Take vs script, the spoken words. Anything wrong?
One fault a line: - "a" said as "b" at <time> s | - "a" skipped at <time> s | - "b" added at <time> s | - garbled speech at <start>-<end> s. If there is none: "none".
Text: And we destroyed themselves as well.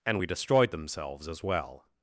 none